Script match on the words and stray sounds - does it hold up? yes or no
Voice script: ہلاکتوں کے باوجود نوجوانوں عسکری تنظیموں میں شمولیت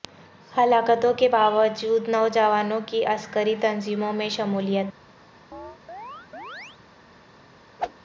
no